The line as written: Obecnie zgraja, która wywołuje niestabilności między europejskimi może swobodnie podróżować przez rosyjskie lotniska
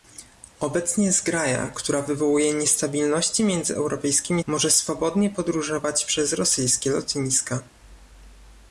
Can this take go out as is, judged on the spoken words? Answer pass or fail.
pass